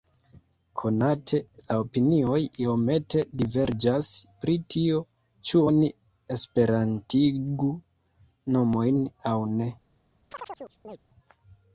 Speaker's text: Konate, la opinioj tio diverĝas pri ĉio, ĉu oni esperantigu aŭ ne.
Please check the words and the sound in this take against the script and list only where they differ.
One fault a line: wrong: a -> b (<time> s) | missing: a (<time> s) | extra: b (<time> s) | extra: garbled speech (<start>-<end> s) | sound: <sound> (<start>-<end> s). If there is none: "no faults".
wrong: tio -> iomete (2.6 s)
wrong: ĉio -> tio (4.8 s)
extra: nomojn (8.6 s)
sound: chirp (10.3-11.0 s)